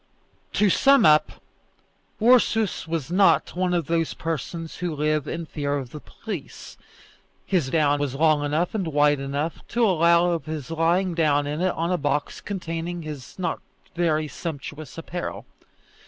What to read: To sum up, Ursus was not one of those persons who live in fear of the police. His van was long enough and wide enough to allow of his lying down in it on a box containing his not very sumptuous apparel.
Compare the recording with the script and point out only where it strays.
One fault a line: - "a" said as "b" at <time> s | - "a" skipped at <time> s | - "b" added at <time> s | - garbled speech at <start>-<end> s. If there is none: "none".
- "van" said as "down" at 7.7 s